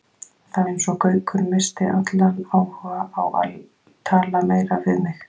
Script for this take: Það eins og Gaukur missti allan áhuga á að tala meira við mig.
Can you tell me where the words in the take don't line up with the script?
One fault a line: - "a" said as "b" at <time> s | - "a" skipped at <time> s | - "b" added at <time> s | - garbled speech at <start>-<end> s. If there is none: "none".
none